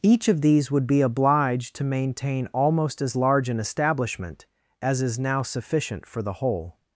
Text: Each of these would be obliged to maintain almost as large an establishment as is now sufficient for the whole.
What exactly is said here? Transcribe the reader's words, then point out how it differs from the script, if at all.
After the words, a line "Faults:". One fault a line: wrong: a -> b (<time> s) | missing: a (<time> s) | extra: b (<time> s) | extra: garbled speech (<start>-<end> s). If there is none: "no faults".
Each of these would be obliged to maintain almost as large an establishment as is now sufficient for the whole.
Faults:
no faults